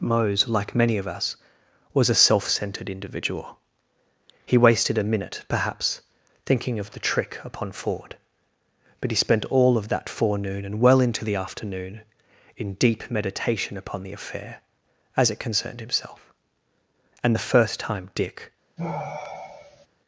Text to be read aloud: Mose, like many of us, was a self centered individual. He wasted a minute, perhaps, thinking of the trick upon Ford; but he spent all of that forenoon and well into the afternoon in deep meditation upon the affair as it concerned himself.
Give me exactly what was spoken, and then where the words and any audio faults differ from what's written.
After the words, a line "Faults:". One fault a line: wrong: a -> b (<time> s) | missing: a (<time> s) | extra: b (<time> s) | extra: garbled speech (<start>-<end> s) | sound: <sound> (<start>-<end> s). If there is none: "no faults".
Mose, like many of us, was a self centered individual. He wasted a minute, perhaps, thinking of the trick upon Ford; but he spent all of that forenoon and well into the afternoon in deep meditation upon the affair as it concerned himself. And the first time Dick
Faults:
extra: And the first time Dick (17.2 s)
sound: sigh (18.8-19.9 s)